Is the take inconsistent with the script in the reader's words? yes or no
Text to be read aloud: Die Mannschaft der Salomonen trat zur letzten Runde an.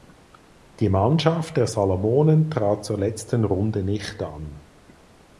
yes